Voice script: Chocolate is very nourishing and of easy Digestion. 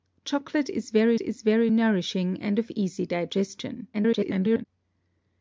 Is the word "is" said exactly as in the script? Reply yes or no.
yes